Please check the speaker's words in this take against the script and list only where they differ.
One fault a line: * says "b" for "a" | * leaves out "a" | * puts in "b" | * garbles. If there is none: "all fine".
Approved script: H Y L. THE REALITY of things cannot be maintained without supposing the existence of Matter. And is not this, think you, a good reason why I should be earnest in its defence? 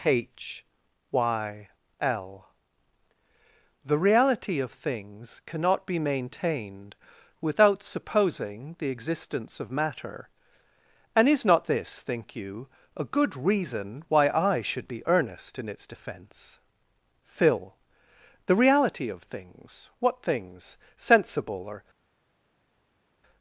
* puts in "PHIL The reality of things What things sensible or"